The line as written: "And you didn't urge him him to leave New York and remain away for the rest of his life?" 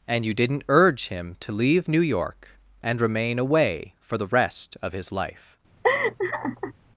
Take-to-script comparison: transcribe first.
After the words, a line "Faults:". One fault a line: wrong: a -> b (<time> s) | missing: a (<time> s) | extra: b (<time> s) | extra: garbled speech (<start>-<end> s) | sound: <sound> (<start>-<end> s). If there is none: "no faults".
"And you didn't urge him to leave New York and remain away for the rest of his life?"
Faults:
missing: him (1.4 s)
sound: laugh (5.8-6.7 s)